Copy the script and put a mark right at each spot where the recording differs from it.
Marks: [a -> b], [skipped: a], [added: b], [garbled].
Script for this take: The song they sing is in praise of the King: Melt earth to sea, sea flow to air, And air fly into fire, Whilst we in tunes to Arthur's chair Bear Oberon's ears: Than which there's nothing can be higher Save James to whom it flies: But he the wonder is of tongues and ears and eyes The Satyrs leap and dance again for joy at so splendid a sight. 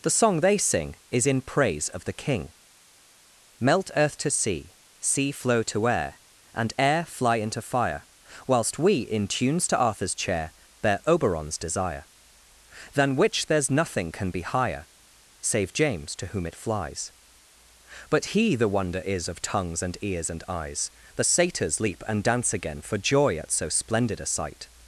The song they sing is in praise of the King: Melt earth to sea, sea flow to air, And air fly into fire, Whilst we in tunes to Arthur's chair Bear Oberon's [ears: -> desire] Than which there's nothing can be higher Save James to whom it flies: But he the wonder is of tongues and ears and eyes The Satyrs leap and dance again for joy at so splendid a sight.